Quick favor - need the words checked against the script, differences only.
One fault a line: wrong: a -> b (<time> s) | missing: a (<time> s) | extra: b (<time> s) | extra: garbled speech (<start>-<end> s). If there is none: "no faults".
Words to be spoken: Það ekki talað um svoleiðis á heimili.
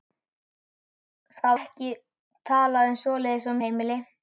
no faults